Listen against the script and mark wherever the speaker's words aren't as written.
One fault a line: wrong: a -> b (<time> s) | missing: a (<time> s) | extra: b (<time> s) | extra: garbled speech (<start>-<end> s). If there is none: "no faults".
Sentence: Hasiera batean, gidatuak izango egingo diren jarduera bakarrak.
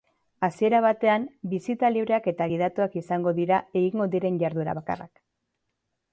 extra: bisita libreak eta (1.5 s)
extra: dira (3.4 s)